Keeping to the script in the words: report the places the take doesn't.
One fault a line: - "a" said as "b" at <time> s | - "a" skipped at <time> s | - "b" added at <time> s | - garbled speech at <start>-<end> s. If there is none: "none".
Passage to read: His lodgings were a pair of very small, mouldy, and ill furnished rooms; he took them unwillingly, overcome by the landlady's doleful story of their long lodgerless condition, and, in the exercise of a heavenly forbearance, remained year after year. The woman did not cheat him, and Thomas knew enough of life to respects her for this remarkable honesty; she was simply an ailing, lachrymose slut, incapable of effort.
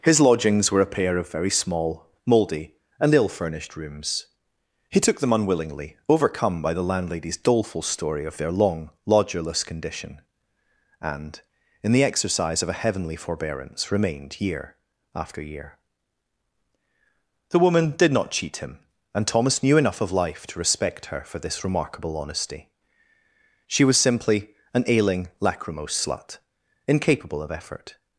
- "respects" said as "respect" at 20.6 s